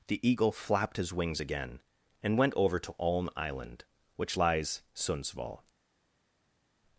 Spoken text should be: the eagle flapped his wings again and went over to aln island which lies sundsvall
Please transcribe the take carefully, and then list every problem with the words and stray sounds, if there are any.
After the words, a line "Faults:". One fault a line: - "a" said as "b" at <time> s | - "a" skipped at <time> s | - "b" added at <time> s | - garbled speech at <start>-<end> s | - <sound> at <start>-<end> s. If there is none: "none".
the eagle flapped his wings again and went over to aln island which lies sundsvall
Faults:
none